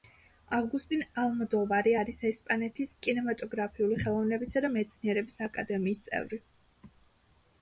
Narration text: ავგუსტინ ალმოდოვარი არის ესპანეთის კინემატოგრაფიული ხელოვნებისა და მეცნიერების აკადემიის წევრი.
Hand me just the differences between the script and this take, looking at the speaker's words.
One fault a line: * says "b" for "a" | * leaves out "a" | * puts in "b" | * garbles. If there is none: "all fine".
all fine